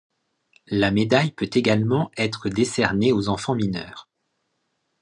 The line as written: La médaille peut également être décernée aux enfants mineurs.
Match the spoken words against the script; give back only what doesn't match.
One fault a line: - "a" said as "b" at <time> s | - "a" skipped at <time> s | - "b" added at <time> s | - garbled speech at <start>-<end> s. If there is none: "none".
none